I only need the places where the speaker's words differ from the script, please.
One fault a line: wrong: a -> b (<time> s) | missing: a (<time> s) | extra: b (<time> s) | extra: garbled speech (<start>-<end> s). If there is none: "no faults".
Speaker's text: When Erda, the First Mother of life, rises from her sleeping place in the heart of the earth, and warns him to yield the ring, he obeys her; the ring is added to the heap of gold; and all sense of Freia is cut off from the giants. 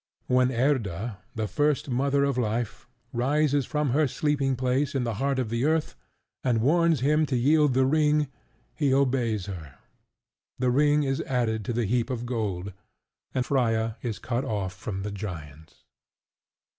missing: all sense of (13.4 s)